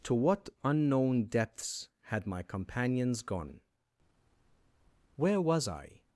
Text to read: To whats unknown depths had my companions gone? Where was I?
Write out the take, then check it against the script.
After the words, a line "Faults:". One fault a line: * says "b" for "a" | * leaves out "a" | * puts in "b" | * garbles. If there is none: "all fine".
To what unknown depths had my companions gone? Where was I?
Faults:
* says "what" for "whats"